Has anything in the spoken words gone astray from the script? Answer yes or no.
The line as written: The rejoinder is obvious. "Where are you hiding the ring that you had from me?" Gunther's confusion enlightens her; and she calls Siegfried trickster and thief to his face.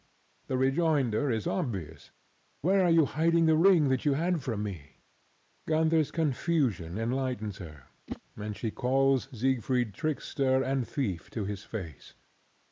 no